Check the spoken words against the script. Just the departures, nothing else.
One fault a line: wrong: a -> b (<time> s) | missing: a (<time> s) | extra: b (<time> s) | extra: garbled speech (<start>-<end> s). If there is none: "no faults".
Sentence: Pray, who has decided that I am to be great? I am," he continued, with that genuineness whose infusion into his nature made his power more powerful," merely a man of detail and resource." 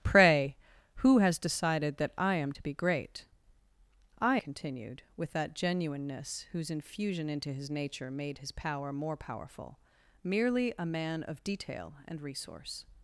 missing: am he (4.4 s)